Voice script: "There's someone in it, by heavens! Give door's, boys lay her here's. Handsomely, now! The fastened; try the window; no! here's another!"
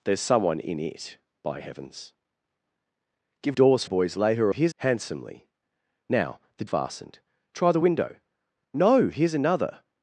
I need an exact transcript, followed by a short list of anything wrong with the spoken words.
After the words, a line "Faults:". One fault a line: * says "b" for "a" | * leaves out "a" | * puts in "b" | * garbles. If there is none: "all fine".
"There's someone in it, by heavens! Give door's, boys lay her here's. Handsomely, now! The fastened; try the window; no! here's another!"
Faults:
all fine